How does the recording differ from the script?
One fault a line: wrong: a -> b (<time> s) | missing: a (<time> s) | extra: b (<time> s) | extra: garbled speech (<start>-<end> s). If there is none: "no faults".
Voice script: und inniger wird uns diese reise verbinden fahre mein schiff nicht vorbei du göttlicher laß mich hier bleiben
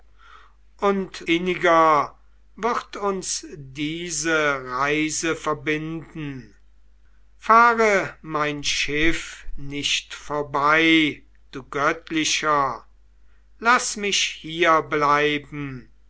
no faults